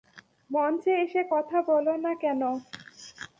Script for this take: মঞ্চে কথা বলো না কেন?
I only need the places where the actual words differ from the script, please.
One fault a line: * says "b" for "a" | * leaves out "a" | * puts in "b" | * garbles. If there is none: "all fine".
* puts in "এসে"